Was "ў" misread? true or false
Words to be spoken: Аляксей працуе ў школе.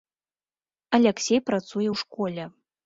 false